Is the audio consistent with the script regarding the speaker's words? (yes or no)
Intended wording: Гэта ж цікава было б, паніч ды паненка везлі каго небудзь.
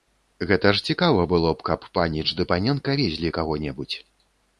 no